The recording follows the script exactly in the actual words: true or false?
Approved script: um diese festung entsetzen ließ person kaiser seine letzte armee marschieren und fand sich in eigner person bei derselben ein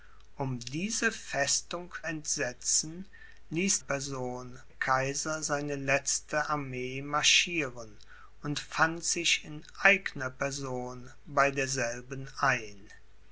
true